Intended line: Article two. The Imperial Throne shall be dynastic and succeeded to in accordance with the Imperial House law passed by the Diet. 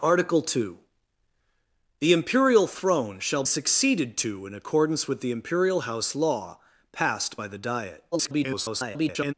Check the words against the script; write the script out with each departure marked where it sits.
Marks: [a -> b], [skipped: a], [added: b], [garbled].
Article two. The Imperial Throne shall [skipped: be dynastic and] succeeded to in accordance with the Imperial House law passed by the Diet. [garbled]